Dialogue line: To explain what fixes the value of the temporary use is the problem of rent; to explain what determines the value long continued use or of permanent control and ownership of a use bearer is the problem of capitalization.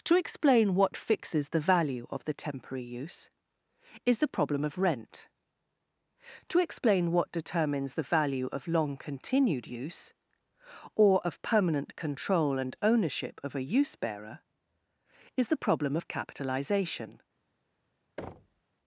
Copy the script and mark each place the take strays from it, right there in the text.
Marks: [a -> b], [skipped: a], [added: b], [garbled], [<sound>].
To explain what fixes the value of the temporary use is the problem of rent; to explain what determines the value [added: of] long continued use or of permanent control and ownership of a use bearer is the problem of capitalization. [thud]